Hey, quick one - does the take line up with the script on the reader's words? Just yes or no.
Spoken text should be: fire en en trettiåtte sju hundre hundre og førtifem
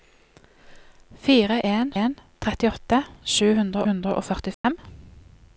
yes